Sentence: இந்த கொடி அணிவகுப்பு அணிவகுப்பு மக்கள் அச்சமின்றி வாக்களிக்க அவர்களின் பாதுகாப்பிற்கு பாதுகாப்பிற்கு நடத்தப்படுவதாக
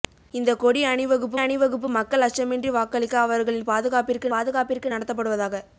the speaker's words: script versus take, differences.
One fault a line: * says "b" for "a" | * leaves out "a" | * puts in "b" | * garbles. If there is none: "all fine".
all fine